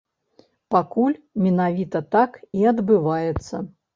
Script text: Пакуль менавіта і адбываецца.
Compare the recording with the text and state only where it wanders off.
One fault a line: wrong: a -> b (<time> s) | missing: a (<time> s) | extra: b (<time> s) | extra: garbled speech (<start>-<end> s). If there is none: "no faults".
extra: так (2.2 s)